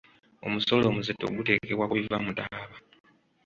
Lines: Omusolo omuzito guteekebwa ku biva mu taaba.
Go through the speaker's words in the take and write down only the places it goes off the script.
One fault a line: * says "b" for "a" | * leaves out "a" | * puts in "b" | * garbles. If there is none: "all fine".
all fine